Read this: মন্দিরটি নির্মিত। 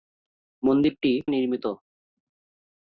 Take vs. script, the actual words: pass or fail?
pass